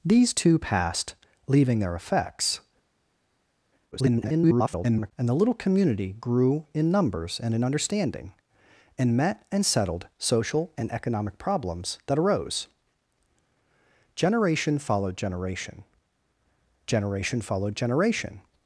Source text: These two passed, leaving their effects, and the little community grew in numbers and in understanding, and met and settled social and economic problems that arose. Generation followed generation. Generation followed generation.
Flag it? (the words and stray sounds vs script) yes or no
yes